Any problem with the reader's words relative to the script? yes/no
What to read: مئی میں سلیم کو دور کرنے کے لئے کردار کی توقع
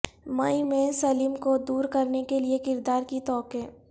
no